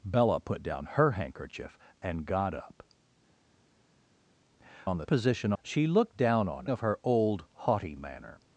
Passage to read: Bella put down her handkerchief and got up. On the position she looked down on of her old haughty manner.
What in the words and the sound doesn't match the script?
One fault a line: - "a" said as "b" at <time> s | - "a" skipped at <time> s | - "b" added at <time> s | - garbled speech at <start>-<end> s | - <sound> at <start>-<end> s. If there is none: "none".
none